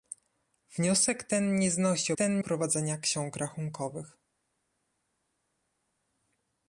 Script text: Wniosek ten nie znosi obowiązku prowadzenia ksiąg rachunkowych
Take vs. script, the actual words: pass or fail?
fail